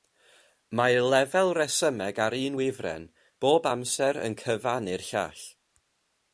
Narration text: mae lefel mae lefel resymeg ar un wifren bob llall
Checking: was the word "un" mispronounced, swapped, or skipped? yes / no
no